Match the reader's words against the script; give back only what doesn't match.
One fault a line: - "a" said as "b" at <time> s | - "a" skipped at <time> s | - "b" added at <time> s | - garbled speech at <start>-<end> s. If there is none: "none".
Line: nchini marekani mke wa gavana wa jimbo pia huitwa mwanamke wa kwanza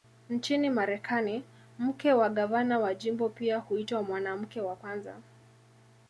none